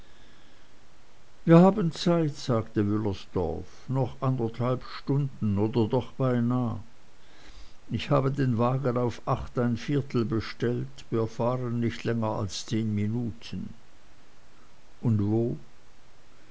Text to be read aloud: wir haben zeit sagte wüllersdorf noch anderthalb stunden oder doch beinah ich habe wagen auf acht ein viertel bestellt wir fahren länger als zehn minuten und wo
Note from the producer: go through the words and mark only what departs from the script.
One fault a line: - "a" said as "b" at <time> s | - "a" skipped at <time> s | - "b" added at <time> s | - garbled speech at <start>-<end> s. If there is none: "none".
- "den" added at 8.3 s
- "nicht" added at 11.8 s